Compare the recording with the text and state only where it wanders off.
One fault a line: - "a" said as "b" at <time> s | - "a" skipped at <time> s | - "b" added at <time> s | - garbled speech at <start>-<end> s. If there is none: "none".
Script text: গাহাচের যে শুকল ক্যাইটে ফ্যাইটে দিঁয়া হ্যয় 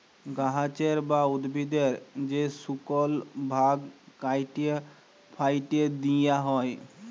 - "বা উদ্ভিদের" added at 1.1 s
- "ভাগ" added at 3.5 s